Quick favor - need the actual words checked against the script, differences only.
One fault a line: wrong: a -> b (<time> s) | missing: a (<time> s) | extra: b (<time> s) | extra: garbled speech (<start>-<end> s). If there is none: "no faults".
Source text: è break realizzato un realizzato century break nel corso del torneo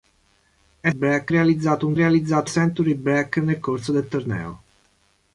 no faults